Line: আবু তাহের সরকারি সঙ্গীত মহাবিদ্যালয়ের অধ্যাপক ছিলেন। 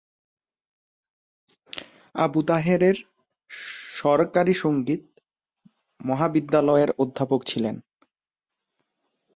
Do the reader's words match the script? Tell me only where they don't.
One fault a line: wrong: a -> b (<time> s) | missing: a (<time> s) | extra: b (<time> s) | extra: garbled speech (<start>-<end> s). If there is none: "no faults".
no faults